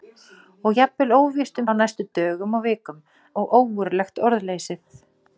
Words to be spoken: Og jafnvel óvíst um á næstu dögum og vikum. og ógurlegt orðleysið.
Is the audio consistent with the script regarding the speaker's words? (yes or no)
yes